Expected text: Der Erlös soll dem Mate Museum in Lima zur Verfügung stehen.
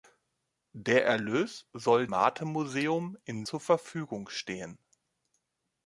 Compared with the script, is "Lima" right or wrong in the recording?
wrong